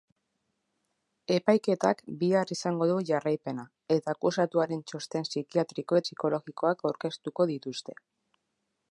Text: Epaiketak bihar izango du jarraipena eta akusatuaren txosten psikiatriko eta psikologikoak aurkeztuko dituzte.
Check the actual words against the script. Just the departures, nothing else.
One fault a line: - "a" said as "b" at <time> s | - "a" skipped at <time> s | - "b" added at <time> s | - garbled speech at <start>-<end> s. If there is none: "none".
- "eta" skipped at 6.0 s